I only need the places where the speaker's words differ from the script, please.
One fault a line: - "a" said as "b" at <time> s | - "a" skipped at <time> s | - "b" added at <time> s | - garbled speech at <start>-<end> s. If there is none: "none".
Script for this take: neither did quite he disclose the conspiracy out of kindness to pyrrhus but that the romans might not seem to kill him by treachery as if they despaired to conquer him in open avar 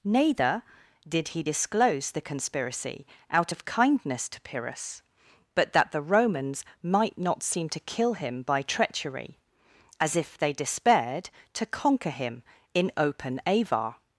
- "quite" skipped at 1.3 s